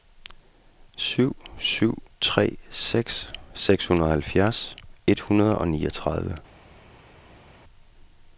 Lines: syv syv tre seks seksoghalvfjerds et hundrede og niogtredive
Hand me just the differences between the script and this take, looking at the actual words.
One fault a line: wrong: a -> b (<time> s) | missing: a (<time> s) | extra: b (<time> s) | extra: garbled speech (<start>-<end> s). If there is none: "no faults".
no faults